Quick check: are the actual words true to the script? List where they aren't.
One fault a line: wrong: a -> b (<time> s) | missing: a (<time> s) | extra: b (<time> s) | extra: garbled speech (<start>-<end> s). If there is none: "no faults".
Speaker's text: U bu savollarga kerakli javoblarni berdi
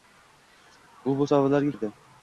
missing: kerakli javoblarni (1.7 s)